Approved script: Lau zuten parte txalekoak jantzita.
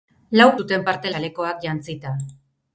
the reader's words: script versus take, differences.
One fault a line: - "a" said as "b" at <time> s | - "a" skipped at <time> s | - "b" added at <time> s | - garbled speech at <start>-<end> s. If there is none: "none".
none